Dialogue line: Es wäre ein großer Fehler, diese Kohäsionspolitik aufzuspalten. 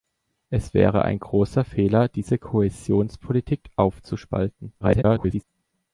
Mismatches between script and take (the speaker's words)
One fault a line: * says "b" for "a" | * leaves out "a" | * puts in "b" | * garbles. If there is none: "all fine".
* garbles